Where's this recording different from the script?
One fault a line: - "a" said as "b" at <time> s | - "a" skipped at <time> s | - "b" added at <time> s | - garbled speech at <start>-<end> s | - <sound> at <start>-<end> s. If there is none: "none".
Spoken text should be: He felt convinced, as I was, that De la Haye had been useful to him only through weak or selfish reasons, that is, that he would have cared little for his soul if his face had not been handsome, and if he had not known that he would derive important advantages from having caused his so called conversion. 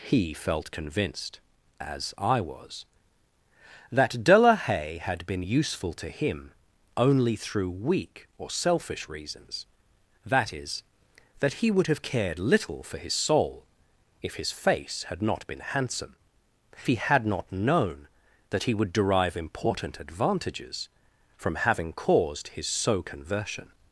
- "and if" skipped at 16.1 s
- "called" skipped at 23.0 s